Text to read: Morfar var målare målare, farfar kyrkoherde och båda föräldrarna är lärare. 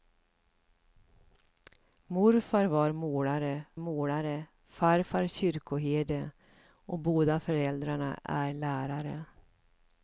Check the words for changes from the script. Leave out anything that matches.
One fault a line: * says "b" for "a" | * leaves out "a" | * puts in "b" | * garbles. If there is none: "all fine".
all fine